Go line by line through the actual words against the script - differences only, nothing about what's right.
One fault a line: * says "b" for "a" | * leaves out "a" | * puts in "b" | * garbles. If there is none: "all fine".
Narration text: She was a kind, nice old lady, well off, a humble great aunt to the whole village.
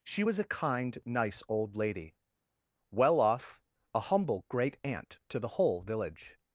all fine